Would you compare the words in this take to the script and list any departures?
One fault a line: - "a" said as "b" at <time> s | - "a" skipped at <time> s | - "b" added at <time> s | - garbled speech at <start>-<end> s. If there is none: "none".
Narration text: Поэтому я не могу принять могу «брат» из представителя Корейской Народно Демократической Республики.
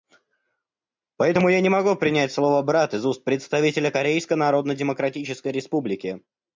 - "могу" said as "слово" at 2.3 s
- "уст" added at 3.0 s